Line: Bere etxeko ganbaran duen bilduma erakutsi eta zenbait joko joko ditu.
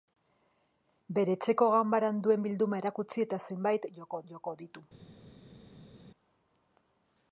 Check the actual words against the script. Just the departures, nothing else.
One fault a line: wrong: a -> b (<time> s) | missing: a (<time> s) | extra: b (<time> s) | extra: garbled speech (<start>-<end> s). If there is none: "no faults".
no faults